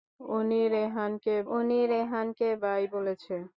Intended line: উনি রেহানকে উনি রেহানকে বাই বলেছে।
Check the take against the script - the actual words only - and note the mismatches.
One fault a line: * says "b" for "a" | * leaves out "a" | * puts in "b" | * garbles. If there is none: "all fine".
all fine